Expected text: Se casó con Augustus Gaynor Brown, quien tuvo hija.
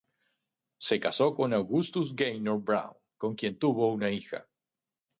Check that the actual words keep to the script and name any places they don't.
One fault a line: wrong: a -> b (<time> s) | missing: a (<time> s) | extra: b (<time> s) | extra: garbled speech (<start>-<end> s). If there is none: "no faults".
extra: con (3.2 s)
extra: una (3.9 s)